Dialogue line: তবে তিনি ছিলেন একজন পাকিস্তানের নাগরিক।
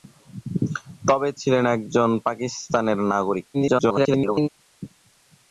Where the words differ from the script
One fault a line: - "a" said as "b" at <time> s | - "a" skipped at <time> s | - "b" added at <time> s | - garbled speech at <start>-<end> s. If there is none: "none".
- "তিনি" skipped at 1.3 s
- garbled speech at 3.5-4.5 s